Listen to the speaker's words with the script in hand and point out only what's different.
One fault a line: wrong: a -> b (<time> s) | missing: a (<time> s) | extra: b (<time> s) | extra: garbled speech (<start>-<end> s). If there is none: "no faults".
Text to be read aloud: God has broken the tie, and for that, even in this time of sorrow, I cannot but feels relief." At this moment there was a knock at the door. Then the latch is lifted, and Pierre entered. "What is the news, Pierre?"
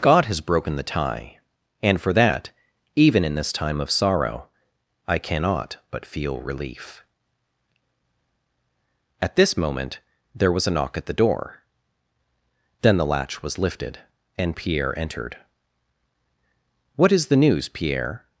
wrong: feels -> feel (6.1 s)
wrong: is -> was (13.4 s)